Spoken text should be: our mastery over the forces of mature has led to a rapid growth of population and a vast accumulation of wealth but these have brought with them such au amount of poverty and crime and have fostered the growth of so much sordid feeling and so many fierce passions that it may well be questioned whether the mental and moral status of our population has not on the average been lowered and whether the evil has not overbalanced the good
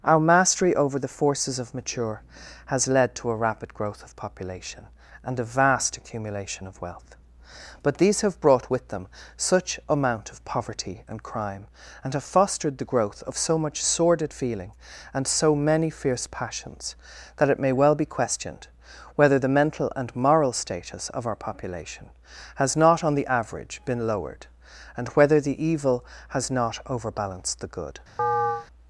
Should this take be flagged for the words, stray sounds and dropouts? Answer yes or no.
yes